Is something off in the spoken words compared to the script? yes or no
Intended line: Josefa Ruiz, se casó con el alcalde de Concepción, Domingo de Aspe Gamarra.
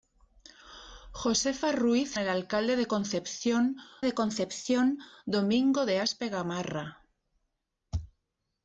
yes